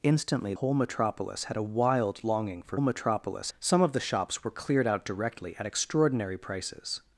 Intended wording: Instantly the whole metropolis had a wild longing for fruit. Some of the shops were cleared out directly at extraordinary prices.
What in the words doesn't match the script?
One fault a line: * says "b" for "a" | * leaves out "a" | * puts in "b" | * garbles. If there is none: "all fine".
* leaves out "the"
* says "metropolis" for "fruit"